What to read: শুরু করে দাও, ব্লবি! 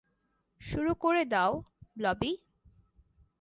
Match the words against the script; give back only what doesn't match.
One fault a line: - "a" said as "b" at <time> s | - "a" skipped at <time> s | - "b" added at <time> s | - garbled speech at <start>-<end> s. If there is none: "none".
none